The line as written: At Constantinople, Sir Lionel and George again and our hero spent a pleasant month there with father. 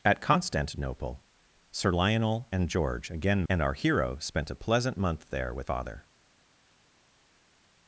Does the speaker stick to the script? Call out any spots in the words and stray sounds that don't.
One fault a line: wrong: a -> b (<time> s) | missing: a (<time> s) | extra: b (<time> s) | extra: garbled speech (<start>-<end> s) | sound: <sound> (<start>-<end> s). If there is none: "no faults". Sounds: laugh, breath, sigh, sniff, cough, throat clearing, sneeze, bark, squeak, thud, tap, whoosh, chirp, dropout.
no faults